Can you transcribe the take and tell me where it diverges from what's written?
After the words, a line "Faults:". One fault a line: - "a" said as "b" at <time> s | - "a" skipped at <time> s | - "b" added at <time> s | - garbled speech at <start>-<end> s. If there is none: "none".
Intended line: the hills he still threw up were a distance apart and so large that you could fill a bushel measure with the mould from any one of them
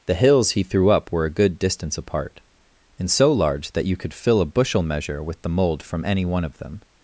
the hills he threw up were a good distance apart and so large that you could fill a bushel measure with the mould from any one of them
Faults:
- "still" skipped at 0.6 s
- "good" added at 1.3 s